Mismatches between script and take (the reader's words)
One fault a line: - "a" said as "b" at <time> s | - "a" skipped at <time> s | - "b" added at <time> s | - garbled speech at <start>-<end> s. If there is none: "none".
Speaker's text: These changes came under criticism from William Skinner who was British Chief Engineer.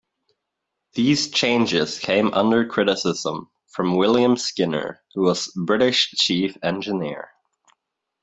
none